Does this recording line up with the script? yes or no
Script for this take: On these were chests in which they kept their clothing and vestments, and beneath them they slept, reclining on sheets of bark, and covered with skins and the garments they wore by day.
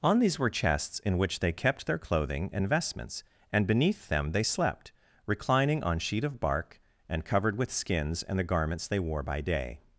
no